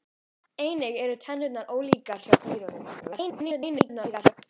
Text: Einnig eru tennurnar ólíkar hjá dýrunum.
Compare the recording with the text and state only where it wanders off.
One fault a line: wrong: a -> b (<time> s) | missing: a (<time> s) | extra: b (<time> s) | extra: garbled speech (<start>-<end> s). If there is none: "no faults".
extra: garbled speech (3.0-4.3 s)